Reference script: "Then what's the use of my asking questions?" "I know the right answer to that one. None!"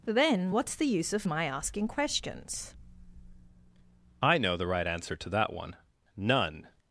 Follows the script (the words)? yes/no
yes